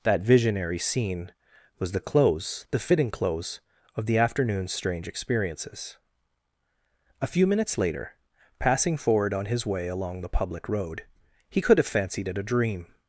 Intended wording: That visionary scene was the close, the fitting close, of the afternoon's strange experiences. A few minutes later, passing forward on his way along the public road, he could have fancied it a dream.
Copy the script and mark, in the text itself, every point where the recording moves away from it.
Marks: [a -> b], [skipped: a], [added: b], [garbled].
That visionary scene was the close, the fitting close, of the afternoon's strange experiences. A few minutes later, passing forward on his way along the public road, he could have fancied it a dream.